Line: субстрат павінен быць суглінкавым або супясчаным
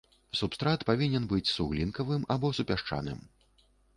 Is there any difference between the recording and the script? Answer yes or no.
no